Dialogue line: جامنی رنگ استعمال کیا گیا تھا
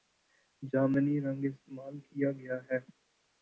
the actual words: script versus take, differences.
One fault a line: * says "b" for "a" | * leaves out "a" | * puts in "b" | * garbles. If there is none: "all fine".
* says "ہے" for "تھا"